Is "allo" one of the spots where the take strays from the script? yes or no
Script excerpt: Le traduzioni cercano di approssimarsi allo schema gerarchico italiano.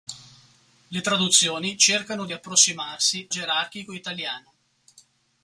yes